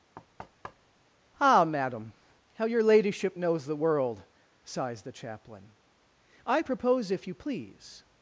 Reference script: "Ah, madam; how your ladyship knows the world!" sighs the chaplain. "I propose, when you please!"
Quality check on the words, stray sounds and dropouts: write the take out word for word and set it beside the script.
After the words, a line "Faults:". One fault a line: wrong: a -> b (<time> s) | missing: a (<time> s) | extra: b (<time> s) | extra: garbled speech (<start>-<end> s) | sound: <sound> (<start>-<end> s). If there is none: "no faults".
"Ah, madam; how your ladyship knows the world!" sighs the chaplain. "I propose, if you please!"
Faults:
sound: thud (0.2-1.1 s)
wrong: when -> if (7.1 s)